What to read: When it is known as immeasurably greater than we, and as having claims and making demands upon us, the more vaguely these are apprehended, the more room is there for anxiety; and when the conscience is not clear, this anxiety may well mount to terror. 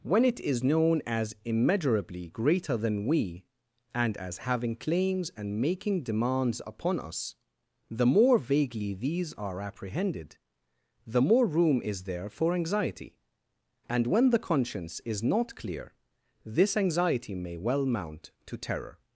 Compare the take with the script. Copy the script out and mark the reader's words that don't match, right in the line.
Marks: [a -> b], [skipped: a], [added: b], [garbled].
When it is known as immeasurably greater than we, and as having claims and making demands upon us, the more vaguely these are apprehended, the more room is there for anxiety; and when the conscience is not clear, this anxiety may well mount to terror.